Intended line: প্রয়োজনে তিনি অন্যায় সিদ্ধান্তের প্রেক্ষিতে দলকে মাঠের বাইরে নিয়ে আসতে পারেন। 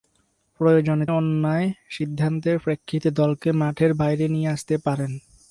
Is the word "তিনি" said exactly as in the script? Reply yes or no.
no